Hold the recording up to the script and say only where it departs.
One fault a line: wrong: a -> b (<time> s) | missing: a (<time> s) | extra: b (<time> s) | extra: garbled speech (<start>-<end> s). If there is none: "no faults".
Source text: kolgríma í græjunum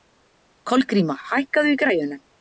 extra: hækkaðu (1.3 s)